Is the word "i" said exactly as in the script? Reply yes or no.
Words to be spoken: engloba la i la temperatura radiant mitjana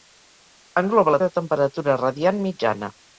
yes